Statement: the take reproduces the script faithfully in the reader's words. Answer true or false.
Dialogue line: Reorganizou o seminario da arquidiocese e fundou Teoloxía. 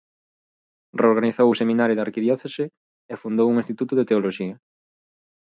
false